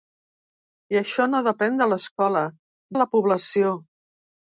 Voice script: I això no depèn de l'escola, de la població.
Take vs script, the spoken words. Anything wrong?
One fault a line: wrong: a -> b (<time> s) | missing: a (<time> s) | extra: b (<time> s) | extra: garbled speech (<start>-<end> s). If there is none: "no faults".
no faults